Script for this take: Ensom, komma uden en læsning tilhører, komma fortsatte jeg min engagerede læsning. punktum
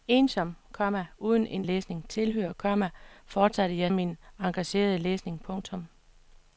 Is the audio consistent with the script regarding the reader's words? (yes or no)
yes